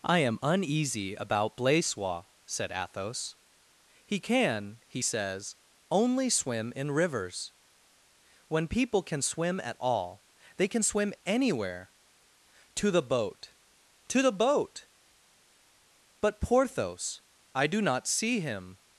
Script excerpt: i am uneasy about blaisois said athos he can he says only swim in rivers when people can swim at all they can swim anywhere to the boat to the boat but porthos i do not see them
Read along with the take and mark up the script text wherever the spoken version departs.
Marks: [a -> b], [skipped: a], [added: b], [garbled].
i am uneasy about blaisois said athos he can he says only swim in rivers when people can swim at all they can swim anywhere to the boat to the boat but porthos i do not see [them -> him]